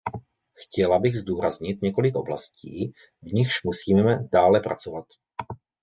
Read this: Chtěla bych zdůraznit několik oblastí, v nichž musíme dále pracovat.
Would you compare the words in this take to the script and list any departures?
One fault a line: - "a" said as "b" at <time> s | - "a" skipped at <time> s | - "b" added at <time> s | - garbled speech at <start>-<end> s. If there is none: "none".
none